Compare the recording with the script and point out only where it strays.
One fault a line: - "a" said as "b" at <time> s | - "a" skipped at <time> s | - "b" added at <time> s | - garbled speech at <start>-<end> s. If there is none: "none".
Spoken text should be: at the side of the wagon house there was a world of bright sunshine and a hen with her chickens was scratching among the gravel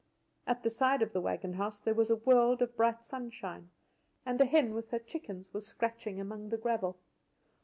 none